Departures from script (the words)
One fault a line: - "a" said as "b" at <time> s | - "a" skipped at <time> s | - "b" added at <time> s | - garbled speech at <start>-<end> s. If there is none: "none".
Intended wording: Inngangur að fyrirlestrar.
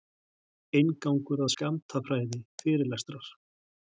- "skammtafræði" added at 1.5 s